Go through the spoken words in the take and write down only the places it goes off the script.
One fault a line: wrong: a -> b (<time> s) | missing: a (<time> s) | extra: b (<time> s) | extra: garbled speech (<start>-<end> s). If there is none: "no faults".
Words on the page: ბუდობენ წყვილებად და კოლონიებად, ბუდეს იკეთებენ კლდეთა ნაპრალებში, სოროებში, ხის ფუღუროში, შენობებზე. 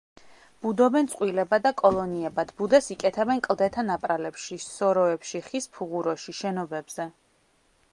no faults